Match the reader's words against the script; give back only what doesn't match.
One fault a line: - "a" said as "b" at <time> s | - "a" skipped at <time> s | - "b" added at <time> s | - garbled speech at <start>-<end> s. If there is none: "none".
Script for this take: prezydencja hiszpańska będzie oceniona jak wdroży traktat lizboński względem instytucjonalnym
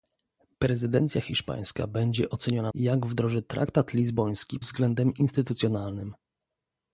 none